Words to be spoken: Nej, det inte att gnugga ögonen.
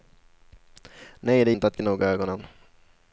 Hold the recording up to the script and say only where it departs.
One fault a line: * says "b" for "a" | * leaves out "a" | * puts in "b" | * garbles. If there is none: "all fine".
all fine